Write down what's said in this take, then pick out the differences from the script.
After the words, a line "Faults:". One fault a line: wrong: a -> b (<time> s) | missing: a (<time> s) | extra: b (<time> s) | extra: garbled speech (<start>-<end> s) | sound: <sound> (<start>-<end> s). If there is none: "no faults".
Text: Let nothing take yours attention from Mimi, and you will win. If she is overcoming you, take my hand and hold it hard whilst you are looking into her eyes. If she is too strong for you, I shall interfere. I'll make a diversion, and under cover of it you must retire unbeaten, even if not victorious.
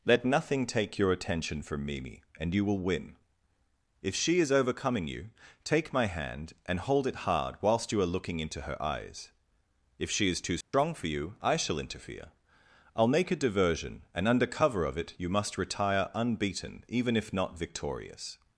Let nothing take your attention from Mimi, and you will win. If she is overcoming you, take my hand and hold it hard whilst you are looking into her eyes. If she is too strong for you, I shall interfere. I'll make a diversion, and under cover of it you must retire unbeaten, even if not victorious.
Faults:
wrong: yours -> your (1.0 s)
sound: dropout (10.6-10.7 s)